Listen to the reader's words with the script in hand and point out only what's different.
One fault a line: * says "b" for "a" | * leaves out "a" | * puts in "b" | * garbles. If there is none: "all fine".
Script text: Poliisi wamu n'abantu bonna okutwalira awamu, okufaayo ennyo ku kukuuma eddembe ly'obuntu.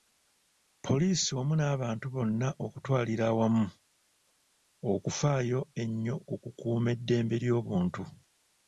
all fine